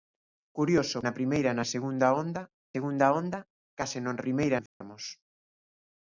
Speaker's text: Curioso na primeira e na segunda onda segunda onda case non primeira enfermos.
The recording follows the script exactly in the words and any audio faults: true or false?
false